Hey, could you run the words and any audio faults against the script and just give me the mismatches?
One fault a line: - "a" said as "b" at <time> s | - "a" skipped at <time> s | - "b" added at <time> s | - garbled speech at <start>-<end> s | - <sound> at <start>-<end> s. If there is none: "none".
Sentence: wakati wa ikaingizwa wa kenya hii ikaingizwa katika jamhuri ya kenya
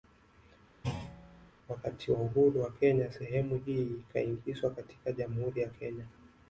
- thud at 0.8-1.5 s
- "ikaingizwa" said as "uhuru" at 2.2 s
- "sehemu" added at 3.1 s